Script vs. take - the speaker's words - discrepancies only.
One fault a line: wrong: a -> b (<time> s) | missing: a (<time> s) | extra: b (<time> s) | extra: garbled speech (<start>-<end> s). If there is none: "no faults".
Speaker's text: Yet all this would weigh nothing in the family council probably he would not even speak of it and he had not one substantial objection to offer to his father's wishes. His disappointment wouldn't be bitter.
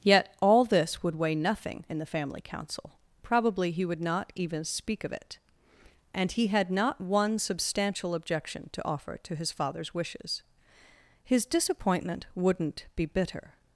no faults